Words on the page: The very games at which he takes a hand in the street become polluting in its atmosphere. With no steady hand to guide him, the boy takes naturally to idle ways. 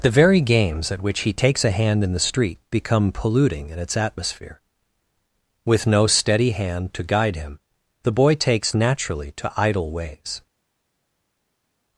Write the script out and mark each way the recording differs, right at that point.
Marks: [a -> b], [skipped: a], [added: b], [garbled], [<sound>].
The very games at which he takes a hand in the street become polluting in its atmosphere. With no steady hand to guide him, the boy takes naturally to idle ways.